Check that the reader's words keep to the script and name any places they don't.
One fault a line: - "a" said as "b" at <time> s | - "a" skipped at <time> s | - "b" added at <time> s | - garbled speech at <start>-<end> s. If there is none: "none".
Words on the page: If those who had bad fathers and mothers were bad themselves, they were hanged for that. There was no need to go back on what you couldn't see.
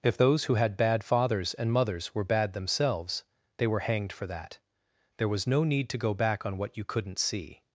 none